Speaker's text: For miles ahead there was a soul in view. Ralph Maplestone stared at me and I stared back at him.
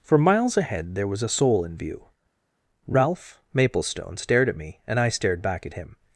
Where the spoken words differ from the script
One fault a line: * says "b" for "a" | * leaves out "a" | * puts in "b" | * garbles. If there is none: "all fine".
all fine